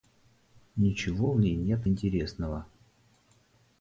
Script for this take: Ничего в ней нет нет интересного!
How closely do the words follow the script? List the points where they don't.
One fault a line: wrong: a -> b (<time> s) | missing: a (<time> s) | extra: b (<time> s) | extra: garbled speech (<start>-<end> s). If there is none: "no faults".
missing: нет (1.9 s)